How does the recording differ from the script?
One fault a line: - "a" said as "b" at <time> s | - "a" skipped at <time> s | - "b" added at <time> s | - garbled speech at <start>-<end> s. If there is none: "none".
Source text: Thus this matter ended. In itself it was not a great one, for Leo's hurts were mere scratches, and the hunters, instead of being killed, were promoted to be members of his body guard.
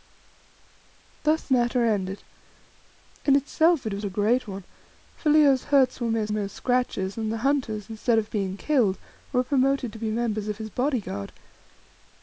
- "this" skipped at 1.5 s
- "not" skipped at 4.1 s
- "mere" added at 6.3 s